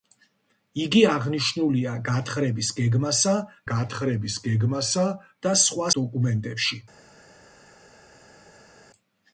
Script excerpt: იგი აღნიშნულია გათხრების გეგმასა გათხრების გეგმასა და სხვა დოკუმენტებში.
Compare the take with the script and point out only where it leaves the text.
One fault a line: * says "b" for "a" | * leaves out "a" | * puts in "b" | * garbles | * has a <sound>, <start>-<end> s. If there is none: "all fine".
all fine